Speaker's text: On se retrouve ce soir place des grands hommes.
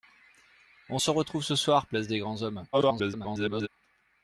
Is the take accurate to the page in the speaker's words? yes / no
no